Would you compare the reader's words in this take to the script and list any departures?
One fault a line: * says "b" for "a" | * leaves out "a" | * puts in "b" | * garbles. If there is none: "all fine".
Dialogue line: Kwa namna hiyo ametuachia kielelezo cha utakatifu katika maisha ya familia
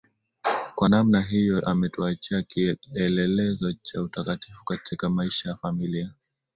all fine